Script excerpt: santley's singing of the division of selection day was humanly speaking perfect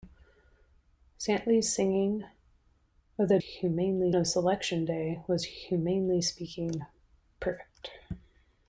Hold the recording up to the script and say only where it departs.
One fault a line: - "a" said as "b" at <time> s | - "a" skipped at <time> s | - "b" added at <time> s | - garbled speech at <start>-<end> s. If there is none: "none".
- "division" said as "humanly" at 3.4 s